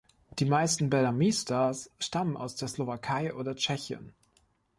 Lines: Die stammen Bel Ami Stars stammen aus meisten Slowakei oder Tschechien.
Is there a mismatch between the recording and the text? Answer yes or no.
yes